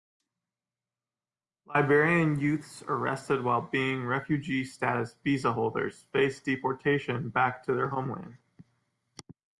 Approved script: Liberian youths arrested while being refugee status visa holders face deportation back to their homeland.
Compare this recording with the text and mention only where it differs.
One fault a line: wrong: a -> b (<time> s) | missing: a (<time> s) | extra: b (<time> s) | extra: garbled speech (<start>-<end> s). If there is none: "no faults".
no faults